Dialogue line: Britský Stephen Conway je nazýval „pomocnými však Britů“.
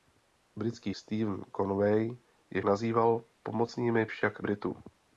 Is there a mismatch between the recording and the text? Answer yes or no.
no